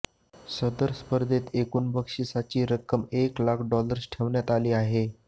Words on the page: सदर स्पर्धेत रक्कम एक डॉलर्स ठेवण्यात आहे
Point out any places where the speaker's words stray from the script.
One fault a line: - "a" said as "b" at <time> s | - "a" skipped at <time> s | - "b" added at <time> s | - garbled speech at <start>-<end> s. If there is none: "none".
- "एकूण बक्षिसाची" added at 1.6 s
- "लाख" added at 3.4 s
- "आली" added at 4.5 s